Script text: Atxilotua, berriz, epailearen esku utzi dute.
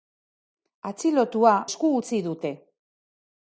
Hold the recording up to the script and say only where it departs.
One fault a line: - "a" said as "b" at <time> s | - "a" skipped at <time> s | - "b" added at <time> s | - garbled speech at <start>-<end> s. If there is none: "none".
- "berriz epailearen" skipped at 1.5 s